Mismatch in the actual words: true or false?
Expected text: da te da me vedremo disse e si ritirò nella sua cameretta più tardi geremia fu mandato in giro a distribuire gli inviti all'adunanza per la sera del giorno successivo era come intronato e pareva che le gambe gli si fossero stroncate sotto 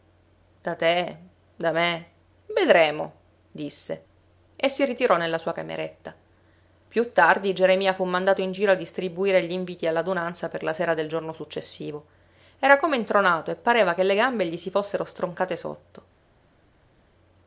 false